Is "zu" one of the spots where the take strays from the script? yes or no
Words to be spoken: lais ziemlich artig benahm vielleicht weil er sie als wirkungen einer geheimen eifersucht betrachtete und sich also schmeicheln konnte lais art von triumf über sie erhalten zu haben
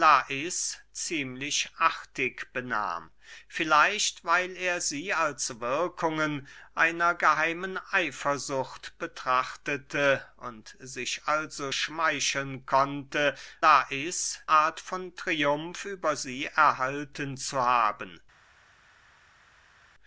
no